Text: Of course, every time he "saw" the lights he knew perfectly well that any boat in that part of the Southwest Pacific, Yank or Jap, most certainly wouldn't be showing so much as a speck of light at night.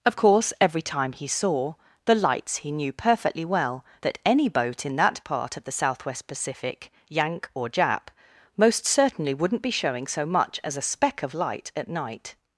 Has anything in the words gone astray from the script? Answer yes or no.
no